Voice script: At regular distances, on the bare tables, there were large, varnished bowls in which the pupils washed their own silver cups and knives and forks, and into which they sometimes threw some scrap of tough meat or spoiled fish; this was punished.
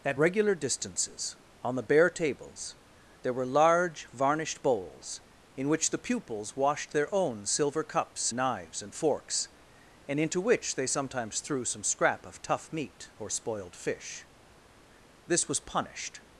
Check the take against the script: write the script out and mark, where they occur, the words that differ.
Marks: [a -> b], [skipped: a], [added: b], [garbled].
At regular distances, on the bare tables, there were large, varnished bowls in which the pupils washed their own silver cups [skipped: and] knives and forks, and into which they sometimes threw some scrap of tough meat or spoiled fish; this was punished.